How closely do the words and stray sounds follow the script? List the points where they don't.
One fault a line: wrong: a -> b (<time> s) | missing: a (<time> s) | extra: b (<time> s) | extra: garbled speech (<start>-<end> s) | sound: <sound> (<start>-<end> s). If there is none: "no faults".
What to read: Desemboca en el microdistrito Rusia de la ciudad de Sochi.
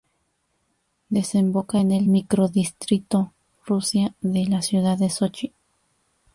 no faults